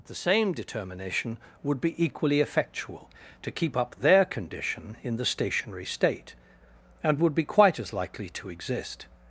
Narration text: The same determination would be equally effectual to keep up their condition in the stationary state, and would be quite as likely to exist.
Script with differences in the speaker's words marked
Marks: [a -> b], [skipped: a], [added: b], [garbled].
The same determination would be equally effectual to keep up their condition in the stationary state, and would be quite as likely to exist.